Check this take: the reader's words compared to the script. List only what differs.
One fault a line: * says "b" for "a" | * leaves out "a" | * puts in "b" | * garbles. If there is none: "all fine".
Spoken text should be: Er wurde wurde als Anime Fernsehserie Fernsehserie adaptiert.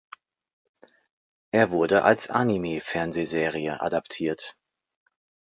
* leaves out "wurde"
* leaves out "Fernsehserie"